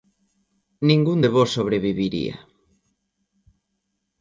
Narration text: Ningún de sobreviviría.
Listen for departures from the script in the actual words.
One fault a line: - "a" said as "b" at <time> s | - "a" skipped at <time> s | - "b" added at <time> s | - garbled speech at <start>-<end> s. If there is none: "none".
- "vós" added at 1.3 s